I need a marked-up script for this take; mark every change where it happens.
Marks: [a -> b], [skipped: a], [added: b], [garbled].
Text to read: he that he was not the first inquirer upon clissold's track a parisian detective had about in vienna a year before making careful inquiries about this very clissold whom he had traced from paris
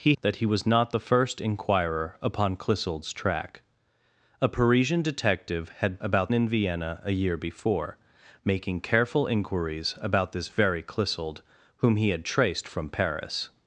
he that he was not the first inquirer upon clissold's track a parisian detective had about in vienna a year before making careful inquiries about this very clissold whom he had traced from paris